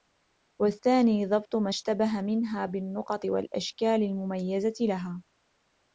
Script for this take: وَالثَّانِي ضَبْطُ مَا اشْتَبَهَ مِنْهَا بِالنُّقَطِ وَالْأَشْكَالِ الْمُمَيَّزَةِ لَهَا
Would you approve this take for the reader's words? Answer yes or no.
yes